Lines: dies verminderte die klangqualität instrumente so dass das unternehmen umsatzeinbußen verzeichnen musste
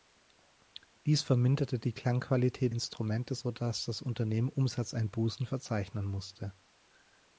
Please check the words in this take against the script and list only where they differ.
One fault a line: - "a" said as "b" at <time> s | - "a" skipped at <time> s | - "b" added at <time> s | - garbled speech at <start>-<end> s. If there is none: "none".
none